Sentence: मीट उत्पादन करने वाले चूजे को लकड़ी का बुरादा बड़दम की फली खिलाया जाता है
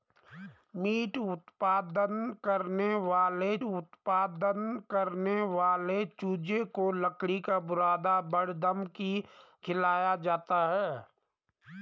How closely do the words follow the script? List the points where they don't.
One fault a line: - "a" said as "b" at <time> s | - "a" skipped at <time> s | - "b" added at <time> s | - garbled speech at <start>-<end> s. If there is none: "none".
- "उत्पादन करने वाले" added at 3.6 s
- "फली" skipped at 9.1 s